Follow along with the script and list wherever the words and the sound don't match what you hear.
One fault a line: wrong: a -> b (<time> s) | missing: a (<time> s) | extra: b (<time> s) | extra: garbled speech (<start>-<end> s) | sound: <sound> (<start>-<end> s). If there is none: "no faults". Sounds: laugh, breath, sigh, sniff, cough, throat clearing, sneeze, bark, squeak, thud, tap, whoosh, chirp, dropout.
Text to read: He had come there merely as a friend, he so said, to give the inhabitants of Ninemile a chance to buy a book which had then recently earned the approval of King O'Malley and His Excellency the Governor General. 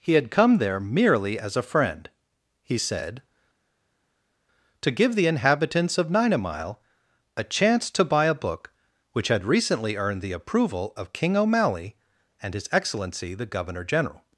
missing: so (2.8 s)
missing: then (9.4 s)